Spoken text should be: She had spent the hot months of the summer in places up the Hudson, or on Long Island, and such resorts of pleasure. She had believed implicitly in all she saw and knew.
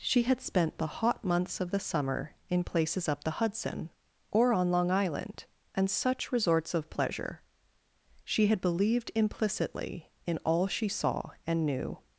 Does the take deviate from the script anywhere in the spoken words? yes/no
no